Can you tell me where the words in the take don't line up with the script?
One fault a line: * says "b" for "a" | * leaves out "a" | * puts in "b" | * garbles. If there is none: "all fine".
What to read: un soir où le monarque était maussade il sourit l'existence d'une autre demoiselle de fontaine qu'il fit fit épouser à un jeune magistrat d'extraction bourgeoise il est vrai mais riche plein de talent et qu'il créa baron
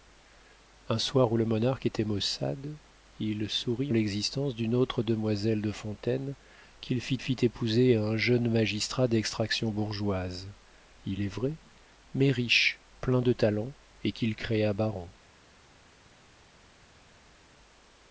all fine